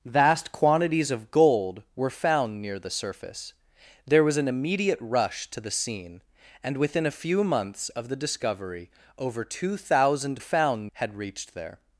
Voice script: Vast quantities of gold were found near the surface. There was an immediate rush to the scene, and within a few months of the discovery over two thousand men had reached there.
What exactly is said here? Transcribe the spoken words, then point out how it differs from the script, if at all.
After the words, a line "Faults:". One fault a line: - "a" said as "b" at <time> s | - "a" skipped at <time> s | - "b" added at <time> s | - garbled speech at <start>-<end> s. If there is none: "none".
Vast quantities of gold were found near the surface. There was an immediate rush to the scene, and within a few months of the discovery over two thousand found had reached there.
Faults:
- "men" said as "found" at 10.4 s